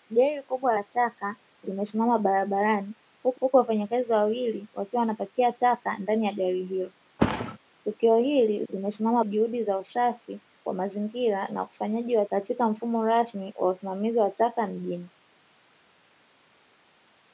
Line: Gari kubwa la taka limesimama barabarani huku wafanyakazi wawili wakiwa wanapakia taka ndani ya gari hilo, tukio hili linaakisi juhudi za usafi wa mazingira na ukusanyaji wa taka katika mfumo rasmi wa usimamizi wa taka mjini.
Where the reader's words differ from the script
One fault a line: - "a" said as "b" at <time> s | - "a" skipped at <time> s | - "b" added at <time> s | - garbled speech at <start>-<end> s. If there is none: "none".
- "huku" added at 3.4 s
- "linaakisi" said as "limesimama" at 8.7 s
- "taka" skipped at 12.3 s